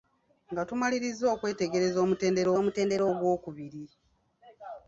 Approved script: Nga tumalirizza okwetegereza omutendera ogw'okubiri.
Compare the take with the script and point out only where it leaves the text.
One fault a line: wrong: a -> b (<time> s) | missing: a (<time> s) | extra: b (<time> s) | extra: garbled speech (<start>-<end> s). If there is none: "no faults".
extra: omutendera (2.6 s)